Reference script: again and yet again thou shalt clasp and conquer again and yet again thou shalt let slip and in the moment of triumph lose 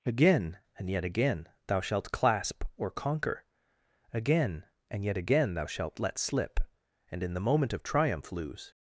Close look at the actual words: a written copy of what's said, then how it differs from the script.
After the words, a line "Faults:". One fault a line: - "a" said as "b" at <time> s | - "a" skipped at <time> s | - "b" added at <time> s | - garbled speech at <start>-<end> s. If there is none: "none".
again and yet again thou shalt clasp or conquer again and yet again thou shalt let slip and in the moment of triumph lose
Faults:
- "and" said as "or" at 2.8 s